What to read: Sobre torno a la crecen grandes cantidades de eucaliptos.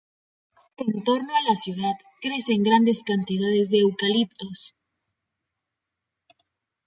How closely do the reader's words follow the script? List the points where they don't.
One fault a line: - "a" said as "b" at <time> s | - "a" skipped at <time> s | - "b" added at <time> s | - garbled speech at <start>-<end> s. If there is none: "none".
- "Sobre" said as "En" at 0.8 s
- "ciudad" added at 1.5 s